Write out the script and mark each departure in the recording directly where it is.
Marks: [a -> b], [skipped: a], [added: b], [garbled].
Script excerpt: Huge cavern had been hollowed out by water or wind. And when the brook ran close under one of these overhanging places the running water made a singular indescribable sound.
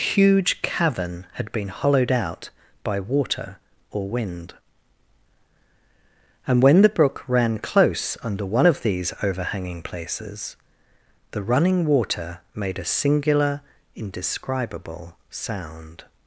Huge cavern had been hollowed out by water or wind. And when the brook ran close under one of these overhanging places the running water made a singular indescribable sound.